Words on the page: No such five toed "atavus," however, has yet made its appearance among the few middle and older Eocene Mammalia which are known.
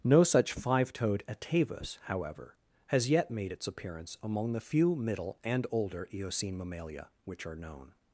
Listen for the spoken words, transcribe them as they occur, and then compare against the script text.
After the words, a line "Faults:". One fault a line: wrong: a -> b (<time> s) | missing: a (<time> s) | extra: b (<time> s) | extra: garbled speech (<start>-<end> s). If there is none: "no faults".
No such five toed "atavus," however, has yet made its appearance among the few middle and older Eocene Mammalia which are known.
Faults:
no faults